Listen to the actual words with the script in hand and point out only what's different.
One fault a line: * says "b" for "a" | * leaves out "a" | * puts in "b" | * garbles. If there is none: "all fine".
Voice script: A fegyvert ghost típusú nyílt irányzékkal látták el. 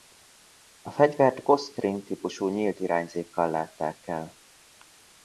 * puts in "ring"